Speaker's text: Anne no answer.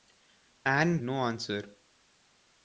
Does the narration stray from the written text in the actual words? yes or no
no